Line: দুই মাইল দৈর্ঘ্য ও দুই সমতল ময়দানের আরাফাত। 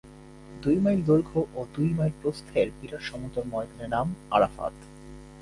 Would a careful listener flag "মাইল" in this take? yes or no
no